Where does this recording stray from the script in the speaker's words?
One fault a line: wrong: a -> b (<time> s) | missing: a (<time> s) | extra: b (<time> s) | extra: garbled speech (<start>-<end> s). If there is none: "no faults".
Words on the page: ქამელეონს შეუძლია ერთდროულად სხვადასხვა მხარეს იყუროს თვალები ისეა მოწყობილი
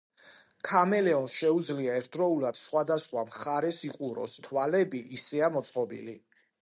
no faults